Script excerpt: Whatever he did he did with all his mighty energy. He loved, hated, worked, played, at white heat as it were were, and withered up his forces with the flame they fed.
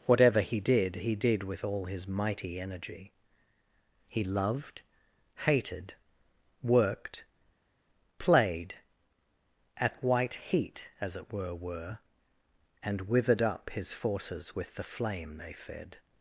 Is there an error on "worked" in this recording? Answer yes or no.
no